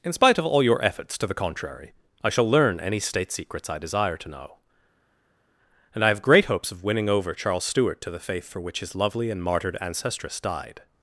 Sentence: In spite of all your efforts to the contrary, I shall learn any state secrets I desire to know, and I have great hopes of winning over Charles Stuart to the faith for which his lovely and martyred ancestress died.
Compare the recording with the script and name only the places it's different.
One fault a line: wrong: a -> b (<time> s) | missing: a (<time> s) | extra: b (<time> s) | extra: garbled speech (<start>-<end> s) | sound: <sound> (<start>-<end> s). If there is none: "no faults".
no faults